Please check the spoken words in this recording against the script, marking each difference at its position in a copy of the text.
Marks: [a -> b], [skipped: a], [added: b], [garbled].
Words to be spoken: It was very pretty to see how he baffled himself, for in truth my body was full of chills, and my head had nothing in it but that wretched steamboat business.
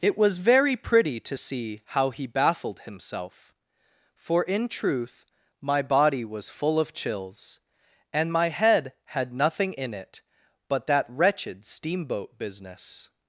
It was very pretty to see how he baffled himself, for in truth my body was full of chills, and my head had nothing in it but that wretched steamboat business.